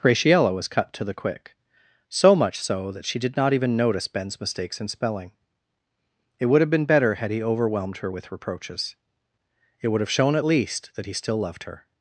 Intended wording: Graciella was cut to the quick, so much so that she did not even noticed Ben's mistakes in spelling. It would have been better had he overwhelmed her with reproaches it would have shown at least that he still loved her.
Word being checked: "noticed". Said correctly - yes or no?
no